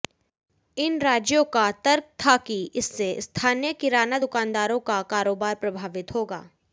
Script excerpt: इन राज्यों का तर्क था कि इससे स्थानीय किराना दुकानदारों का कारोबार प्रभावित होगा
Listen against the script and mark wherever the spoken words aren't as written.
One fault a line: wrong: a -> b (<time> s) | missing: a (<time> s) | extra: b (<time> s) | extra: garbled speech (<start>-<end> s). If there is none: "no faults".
no faults